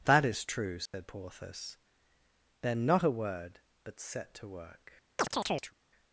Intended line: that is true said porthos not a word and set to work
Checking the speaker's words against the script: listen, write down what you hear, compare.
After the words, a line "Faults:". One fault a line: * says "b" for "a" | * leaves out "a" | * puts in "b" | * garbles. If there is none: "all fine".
that is true said porthos then not a word but set to work
Faults:
* puts in "then"
* says "but" for "and"